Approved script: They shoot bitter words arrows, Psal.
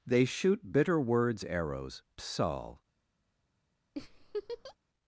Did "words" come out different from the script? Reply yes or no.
no